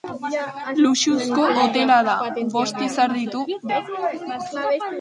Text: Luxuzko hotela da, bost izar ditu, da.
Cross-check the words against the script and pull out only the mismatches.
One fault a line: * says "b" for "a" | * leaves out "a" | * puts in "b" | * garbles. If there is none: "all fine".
all fine